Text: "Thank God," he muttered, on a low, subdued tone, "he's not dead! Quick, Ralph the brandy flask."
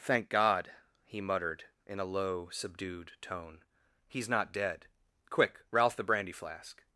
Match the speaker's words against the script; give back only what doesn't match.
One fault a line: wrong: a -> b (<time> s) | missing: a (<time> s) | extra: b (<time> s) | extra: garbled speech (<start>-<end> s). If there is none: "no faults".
wrong: on -> in (1.9 s)